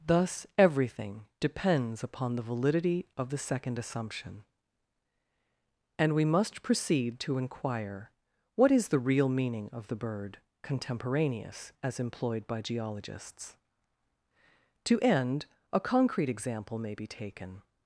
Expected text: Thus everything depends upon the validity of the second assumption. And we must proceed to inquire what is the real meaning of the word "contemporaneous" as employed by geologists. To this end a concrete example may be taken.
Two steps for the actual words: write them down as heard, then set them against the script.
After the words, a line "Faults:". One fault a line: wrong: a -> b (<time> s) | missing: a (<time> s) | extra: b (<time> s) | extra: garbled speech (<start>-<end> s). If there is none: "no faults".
Thus everything depends upon the validity of the second assumption. And we must proceed to inquire what is the real meaning of the bird "contemporaneous" as employed by geologists. To end a concrete example may be taken.
Faults:
wrong: word -> bird (9.9 s)
missing: this (15.0 s)